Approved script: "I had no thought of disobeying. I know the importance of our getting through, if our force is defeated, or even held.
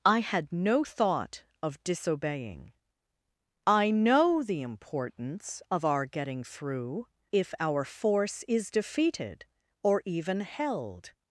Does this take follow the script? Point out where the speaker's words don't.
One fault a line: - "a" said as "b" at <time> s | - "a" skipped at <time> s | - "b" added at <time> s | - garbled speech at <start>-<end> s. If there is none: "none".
none